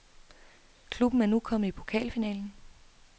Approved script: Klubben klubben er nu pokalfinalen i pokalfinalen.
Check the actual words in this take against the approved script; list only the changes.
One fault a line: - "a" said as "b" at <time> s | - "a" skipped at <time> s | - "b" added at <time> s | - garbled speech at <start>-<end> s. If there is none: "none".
- "klubben" skipped at 1.2 s
- "pokalfinalen" said as "kommet" at 1.4 s